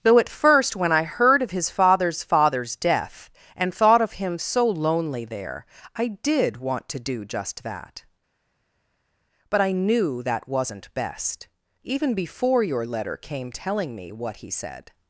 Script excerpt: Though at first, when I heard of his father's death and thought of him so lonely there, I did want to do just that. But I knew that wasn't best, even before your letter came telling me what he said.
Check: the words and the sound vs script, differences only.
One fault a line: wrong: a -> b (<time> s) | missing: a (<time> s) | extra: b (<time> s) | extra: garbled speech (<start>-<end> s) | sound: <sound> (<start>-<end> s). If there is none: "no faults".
extra: father's (2.2 s)